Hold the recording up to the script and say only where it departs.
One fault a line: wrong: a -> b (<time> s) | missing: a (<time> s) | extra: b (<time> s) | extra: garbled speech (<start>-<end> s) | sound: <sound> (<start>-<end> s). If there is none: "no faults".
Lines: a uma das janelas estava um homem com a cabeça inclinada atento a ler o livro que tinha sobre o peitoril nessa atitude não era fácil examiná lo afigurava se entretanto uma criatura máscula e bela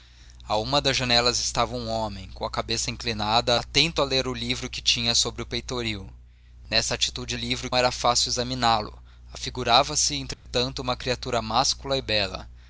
wrong: não -> livro (7.3 s)
sound: dropout (10.3-10.5 s)